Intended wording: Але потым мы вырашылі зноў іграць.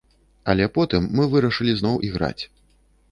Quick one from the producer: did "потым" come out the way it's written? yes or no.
yes